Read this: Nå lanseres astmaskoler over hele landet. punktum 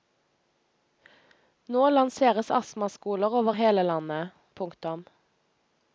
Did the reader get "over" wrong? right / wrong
right